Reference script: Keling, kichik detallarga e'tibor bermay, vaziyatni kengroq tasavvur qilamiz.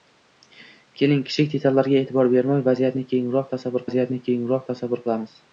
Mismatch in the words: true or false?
true